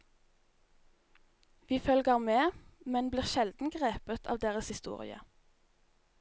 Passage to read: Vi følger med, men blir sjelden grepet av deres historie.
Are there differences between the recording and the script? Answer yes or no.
no